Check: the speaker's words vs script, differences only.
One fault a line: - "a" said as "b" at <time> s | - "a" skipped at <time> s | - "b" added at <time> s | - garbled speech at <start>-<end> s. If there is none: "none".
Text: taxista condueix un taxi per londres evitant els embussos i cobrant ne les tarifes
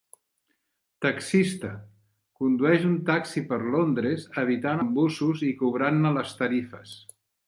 - "els" skipped at 4.8 s